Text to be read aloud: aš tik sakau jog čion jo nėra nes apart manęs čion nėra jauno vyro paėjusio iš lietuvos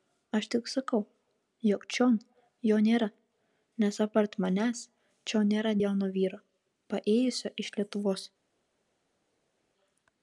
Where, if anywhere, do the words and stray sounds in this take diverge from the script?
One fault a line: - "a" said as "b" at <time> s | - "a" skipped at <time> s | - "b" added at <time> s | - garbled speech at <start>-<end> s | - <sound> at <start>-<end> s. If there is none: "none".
none